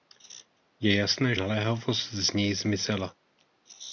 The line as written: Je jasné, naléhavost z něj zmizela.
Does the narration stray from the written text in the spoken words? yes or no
no